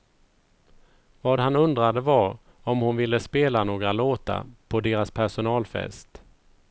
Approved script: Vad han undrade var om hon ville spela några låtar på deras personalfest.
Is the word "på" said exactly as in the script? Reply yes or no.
yes